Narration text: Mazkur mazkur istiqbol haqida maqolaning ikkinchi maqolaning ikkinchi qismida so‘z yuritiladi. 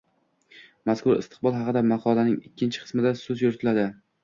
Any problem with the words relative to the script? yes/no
yes